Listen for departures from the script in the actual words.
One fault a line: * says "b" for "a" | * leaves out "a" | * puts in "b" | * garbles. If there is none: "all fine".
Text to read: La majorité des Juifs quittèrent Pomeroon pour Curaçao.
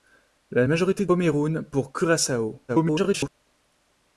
* leaves out "des Juifs quittèrent"
* garbles